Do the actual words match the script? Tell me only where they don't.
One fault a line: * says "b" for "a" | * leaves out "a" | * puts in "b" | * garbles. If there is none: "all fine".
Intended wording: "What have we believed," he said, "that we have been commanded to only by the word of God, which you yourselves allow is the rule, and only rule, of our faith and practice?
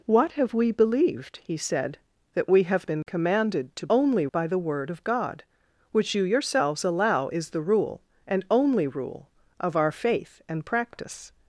all fine